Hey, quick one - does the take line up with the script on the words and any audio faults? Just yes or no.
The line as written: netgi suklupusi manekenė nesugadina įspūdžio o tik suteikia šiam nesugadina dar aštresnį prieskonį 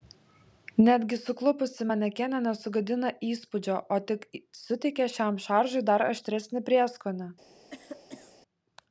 no